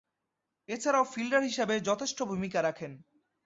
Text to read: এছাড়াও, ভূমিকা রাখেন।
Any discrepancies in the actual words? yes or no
yes